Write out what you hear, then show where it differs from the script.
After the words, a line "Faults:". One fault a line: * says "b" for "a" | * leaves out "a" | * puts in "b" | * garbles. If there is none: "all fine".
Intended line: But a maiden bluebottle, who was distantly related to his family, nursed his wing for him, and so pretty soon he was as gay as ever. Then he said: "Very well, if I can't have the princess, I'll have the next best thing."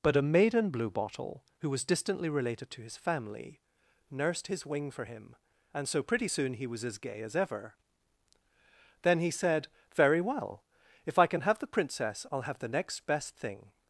But a maiden bluebottle, who was distantly related to his family, nursed his wing for him, and so pretty soon he was as gay as ever. Then he said: "Very well, if I can have the princess, I'll have the next best thing."
Faults:
* says "can" for "can't"